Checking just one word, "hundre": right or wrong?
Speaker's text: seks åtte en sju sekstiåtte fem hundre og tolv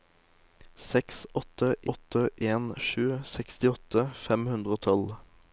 right